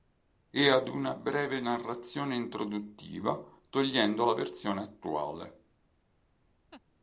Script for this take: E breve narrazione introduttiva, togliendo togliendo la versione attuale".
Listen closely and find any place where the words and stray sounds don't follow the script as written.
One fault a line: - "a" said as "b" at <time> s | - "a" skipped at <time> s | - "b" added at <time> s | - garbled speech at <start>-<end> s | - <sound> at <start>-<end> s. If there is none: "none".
- "ad una" added at 0.7 s
- "togliendo" skipped at 4.2 s
- laugh at 6.7-6.8 s